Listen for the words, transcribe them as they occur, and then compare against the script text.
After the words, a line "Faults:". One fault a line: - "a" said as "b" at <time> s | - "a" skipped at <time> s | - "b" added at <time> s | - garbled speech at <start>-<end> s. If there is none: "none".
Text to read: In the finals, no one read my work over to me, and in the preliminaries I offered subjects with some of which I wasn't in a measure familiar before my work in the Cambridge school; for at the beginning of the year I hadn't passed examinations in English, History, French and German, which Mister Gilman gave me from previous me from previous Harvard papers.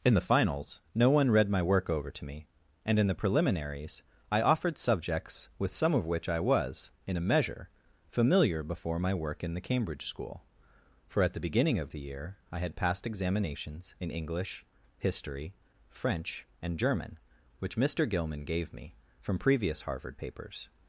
In the finals, no one read my work over to me, and in the preliminaries I offered subjects with some of which I was in a measure familiar before my work in the Cambridge school; for at the beginning of the year I had passed examinations in English, History, French and German, which Mister Gilman gave me from previous Harvard papers.
Faults:
- "wasn't" said as "was" at 6.4 s
- "hadn't" said as "had" at 12.6 s
- "me from previous" skipped at 19.8 s